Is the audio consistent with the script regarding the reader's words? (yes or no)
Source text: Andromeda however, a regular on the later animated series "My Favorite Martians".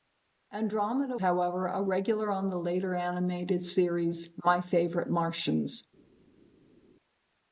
yes